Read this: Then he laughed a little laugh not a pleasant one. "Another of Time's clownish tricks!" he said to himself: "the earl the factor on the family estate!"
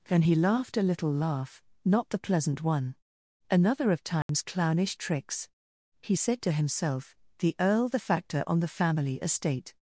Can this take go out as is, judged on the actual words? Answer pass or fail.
fail